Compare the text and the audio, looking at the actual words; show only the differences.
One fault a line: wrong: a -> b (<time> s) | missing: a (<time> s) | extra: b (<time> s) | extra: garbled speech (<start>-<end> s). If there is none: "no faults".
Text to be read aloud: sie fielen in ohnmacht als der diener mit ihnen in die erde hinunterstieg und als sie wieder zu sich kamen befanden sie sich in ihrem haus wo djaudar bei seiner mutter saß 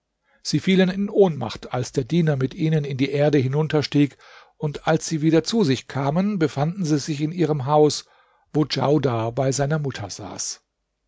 no faults